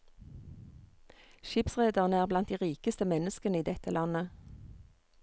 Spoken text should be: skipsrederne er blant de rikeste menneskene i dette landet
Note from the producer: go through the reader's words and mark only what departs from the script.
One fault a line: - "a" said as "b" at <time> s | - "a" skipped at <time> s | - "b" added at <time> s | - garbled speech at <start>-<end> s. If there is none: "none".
none